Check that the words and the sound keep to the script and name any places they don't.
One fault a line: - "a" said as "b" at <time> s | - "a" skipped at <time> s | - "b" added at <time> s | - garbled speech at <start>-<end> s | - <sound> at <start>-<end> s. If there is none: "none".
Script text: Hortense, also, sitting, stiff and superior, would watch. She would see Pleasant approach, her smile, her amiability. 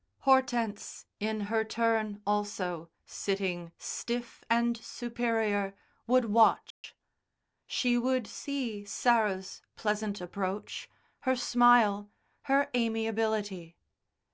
- "in her turn" added at 1.2 s
- dropout at 6.7-6.8 s
- "Sarah's" added at 8.9 s